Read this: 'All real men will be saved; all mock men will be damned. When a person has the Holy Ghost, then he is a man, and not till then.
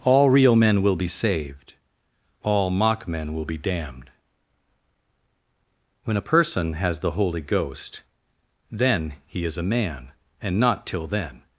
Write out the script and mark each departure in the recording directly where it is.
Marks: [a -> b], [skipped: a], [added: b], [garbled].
'All real men will be saved; all mock men will be damned. When a person has the Holy Ghost, then he is a man, and not till then.